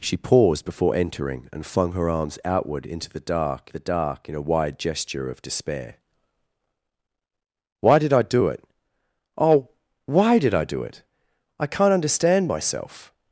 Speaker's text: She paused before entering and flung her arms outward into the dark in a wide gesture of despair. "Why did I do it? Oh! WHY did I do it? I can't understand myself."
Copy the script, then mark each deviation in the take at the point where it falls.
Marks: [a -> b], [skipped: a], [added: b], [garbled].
She paused before entering and flung her arms outward into the dark [added: the dark] in a wide gesture of despair. "Why did I do it? Oh! WHY did I do it? I can't understand myself."